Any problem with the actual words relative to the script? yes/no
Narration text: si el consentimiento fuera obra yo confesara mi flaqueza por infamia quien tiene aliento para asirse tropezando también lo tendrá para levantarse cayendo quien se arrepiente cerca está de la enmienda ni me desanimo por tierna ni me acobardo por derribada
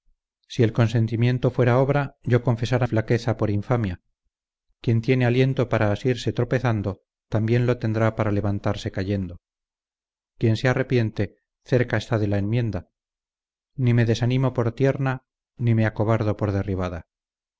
yes